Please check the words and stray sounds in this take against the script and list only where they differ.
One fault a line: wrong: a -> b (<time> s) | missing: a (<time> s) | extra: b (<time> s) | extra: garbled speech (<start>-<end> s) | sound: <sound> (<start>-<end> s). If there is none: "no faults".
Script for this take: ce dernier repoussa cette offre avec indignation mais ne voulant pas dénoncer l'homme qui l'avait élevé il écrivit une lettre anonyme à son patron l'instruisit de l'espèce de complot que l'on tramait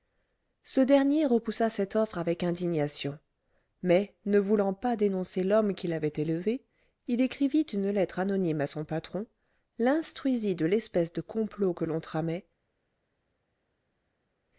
no faults